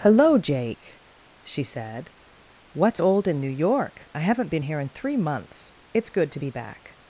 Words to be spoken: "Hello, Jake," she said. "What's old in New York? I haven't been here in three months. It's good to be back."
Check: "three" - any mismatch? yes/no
no